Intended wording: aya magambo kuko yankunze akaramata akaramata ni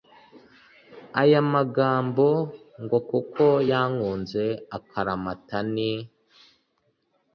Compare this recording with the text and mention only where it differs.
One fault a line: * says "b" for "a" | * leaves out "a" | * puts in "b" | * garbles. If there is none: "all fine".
* puts in "ngo"
* leaves out "akaramata"